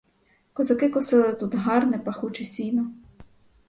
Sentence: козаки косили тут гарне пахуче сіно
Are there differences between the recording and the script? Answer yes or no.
no